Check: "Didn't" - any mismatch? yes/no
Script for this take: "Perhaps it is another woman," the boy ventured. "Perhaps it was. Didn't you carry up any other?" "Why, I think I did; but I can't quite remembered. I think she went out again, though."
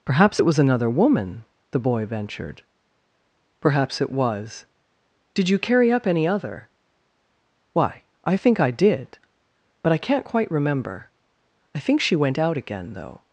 yes